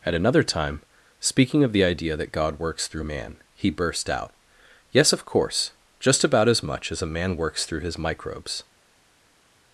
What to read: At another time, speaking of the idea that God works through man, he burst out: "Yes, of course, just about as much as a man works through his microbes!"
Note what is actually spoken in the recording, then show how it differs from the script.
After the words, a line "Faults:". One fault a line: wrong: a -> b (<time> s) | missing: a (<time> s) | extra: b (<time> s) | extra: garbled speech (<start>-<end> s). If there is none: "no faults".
At another time, speaking of the idea that God works through man, he burst out: "Yes, of course, just about as much as a man works through his microbes!"
Faults:
no faults